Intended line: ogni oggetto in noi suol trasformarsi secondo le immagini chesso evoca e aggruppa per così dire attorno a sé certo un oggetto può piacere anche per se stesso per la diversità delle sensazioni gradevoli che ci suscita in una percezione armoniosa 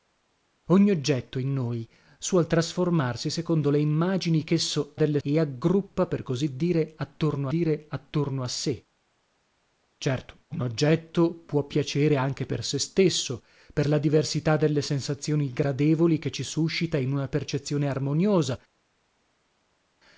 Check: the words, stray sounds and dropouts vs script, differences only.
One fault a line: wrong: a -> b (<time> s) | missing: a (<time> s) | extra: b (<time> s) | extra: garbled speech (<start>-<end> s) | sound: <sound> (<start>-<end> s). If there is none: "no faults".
wrong: evoca -> delle (4.9 s)
extra: dire attorno (7.5 s)